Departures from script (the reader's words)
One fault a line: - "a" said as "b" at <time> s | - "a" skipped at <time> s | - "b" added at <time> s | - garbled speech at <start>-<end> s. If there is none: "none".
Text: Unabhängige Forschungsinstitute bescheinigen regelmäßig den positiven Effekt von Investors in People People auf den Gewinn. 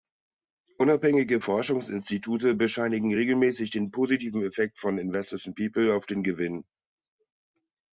- "People" skipped at 5.9 s